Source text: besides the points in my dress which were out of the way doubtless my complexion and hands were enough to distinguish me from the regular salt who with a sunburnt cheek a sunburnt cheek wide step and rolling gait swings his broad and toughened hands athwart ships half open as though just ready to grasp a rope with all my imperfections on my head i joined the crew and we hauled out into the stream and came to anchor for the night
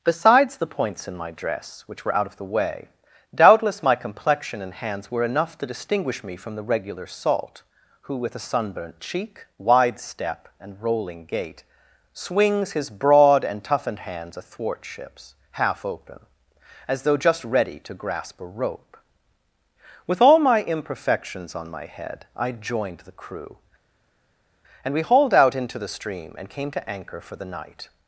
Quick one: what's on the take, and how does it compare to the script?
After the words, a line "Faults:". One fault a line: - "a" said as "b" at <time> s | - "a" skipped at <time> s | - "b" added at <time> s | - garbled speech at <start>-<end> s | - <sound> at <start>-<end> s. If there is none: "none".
besides the points in my dress which were out of the way doubtless my complexion and hands were enough to distinguish me from the regular salt who with a sunburnt cheek wide step and rolling gait swings his broad and toughened hands athwart ships half open as though just ready to grasp a rope with all my imperfections on my head i joined the crew and we hauled out into the stream and came to anchor for the night
Faults:
- "a sunburnt cheek" skipped at 9.4 s